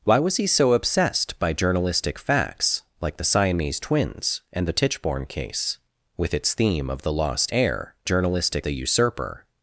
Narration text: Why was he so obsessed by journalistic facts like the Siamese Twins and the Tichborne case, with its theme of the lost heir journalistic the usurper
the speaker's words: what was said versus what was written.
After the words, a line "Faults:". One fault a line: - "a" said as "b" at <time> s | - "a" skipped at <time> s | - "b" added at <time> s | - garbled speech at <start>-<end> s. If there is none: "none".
Why was he so obsessed by journalistic facts like the Siamese Twins and the Tichborne case, with its theme of the lost heir journalistic the usurper
Faults:
none